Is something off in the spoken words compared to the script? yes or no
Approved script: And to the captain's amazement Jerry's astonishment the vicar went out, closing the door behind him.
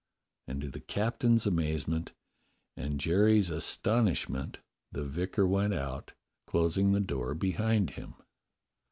yes